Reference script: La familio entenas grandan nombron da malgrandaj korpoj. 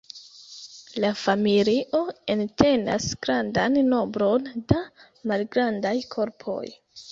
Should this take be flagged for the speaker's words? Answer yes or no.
no